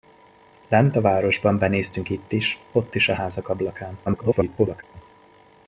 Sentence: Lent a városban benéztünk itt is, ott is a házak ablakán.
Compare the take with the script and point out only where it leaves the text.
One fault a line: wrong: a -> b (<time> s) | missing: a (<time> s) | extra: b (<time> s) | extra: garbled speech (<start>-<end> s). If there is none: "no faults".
extra: garbled speech (4.1-4.8 s)